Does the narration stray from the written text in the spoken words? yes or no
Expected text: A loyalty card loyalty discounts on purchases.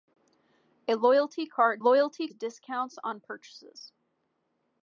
no